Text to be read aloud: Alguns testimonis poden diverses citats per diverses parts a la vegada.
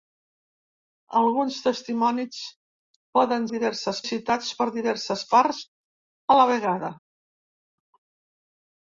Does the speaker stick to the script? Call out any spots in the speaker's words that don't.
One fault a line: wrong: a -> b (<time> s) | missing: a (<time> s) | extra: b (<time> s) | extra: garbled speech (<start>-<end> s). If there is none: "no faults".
no faults